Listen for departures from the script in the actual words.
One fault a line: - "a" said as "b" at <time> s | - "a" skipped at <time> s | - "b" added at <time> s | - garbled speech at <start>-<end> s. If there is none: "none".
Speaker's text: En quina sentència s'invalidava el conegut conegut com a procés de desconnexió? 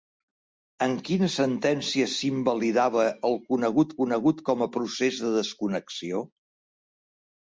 none